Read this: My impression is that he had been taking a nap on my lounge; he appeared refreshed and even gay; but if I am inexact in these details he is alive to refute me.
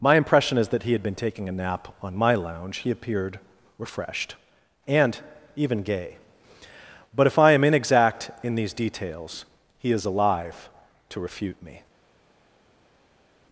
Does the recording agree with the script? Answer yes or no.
yes